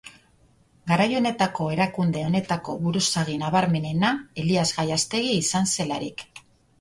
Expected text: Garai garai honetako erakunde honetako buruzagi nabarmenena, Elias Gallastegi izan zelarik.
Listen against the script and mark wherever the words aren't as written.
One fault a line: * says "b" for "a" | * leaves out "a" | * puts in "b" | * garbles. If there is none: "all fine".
* leaves out "garai"